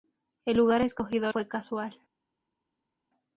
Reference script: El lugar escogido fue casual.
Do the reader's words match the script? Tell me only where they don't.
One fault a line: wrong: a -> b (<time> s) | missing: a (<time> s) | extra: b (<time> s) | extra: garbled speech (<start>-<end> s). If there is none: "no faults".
no faults